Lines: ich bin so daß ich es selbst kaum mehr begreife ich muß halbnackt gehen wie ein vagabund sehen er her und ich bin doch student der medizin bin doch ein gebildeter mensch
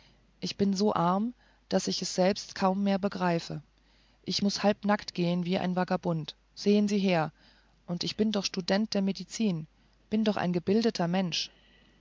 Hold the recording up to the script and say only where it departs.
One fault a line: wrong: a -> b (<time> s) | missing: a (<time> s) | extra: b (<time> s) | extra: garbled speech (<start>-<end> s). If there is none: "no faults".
extra: arm (0.9 s)
wrong: er -> sie (6.9 s)